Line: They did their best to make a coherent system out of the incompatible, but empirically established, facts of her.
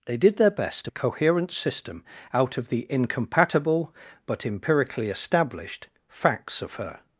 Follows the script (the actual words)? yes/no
no